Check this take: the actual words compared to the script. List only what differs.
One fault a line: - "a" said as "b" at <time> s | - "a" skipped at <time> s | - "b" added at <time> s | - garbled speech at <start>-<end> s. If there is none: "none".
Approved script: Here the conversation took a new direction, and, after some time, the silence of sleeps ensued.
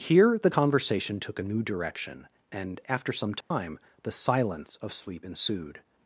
- "sleeps" said as "sleep" at 4.9 s